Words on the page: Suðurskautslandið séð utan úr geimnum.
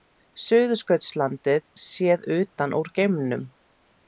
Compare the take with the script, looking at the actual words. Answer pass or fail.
pass